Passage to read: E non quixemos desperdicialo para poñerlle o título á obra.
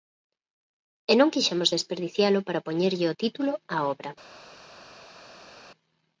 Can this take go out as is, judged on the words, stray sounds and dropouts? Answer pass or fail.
pass